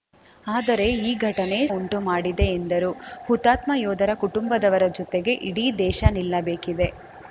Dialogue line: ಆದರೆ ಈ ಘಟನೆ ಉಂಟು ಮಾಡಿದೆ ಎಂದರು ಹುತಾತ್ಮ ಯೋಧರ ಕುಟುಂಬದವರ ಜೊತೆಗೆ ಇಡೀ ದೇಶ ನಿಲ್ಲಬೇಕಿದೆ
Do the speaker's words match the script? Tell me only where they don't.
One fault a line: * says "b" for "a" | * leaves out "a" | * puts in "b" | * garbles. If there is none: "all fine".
all fine